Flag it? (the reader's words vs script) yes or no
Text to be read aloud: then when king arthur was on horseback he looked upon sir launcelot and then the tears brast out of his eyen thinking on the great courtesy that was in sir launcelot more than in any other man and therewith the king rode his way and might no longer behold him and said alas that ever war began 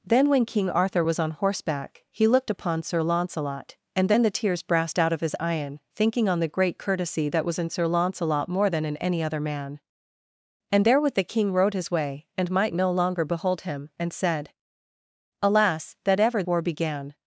no